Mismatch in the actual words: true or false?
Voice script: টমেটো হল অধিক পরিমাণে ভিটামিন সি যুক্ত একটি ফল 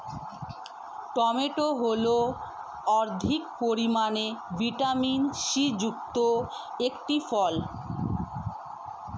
false